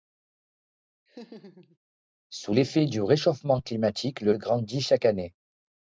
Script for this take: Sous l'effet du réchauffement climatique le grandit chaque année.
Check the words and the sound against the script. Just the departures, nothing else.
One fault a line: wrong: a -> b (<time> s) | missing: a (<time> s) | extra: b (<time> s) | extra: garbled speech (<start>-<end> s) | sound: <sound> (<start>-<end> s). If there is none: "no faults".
sound: laugh (1.1-1.8 s)